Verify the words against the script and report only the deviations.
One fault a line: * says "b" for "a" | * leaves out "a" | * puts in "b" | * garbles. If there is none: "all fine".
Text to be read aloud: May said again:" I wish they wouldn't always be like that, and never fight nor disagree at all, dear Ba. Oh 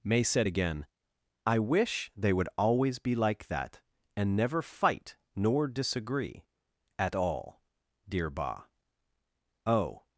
* says "would" for "wouldn't"